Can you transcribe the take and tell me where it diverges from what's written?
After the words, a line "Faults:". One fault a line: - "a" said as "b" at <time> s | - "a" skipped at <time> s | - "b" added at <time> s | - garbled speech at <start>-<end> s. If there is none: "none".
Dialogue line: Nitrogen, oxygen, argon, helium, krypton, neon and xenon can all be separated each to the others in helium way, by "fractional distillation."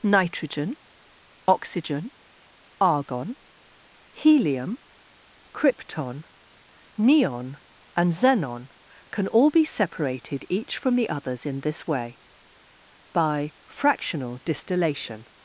Nitrogen, oxygen, argon, helium, krypton, neon and xenon can all be separated each from the others in this way, by "fractional distillation."
Faults:
- "to" said as "from" at 10.8 s
- "helium" said as "this" at 11.6 s